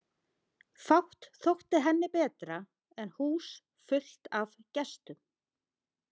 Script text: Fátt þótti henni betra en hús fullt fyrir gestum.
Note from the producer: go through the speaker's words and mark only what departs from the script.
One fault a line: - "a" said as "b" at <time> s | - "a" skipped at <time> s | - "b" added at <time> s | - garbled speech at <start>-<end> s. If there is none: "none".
- "fyrir" said as "af" at 4.4 s